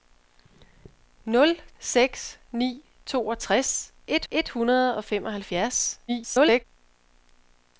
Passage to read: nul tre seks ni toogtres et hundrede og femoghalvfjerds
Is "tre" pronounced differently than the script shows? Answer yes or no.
yes